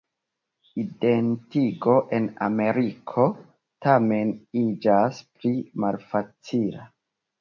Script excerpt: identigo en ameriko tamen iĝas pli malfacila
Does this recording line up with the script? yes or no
yes